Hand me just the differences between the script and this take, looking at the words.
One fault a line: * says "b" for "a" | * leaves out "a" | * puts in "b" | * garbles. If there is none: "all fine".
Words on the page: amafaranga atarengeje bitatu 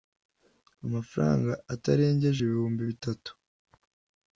* puts in "ibihumbi"